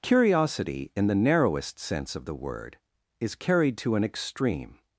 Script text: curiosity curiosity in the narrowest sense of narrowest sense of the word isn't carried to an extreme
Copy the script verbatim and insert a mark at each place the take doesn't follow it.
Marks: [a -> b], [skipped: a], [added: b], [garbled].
curiosity [skipped: curiosity] in the narrowest sense of [skipped: narrowest sense of] the word [isn't -> is] carried to an extreme